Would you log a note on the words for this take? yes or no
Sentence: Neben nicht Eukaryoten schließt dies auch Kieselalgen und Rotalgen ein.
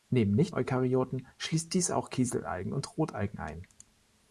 no